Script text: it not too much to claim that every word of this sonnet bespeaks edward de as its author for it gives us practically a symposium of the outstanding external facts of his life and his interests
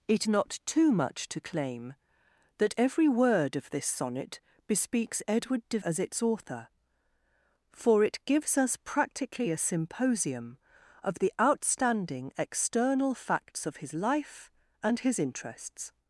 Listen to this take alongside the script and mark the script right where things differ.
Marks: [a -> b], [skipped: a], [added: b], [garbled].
it not too much to claim that every word of this sonnet bespeaks edward de as its author for it gives us practically a symposium of the outstanding external facts of his life and his interests